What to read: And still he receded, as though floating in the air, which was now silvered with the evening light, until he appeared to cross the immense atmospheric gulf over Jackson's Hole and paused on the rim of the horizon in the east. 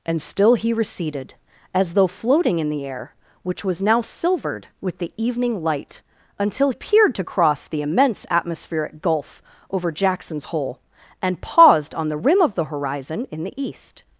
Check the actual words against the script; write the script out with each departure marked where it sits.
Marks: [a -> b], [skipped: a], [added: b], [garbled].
And still he receded, as though floating in the air, which was now silvered with the evening light, until [skipped: he] appeared to cross the immense atmospheric gulf over Jackson's Hole and paused on the rim of the horizon in the east.